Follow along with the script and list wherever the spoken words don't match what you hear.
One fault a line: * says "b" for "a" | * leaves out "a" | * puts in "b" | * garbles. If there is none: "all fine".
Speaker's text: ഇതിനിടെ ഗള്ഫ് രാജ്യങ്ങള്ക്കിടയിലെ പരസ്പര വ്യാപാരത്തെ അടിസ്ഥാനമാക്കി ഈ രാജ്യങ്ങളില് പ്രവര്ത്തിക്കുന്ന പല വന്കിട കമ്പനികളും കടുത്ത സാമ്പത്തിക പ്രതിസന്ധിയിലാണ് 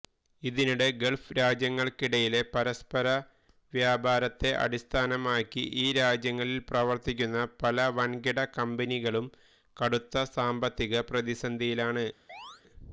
all fine